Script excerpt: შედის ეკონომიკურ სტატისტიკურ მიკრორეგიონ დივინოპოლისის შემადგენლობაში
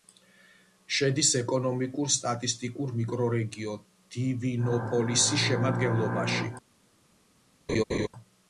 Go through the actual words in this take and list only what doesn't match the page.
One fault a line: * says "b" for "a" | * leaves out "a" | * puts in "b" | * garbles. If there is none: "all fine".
all fine